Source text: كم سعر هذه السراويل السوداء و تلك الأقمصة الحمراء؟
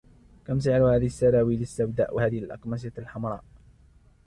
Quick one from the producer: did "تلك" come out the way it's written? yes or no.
no